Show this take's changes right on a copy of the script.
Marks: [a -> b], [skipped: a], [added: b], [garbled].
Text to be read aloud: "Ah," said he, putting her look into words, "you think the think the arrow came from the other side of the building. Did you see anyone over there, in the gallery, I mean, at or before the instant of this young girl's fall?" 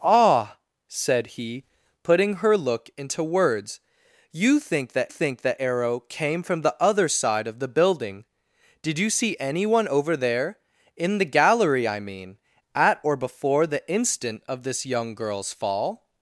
"Ah," said he, putting her look into words, "you think the think the arrow came from the other side of the building. Did you see anyone over there, in the gallery, I mean, at or before the instant of this young girl's fall?"